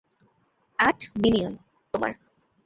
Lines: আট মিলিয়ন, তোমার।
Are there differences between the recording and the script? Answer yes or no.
no